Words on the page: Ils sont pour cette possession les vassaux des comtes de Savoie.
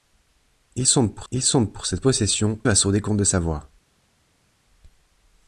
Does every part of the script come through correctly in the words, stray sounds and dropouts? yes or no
no